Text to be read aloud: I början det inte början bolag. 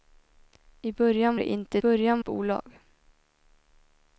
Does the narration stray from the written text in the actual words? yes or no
no